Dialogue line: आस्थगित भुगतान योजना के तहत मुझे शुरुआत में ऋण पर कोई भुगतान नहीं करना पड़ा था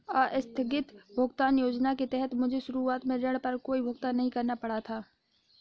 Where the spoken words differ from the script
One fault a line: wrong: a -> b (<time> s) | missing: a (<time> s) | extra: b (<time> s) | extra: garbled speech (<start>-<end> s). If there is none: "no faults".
no faults